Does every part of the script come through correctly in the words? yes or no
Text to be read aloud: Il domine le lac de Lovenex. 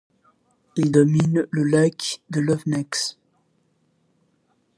yes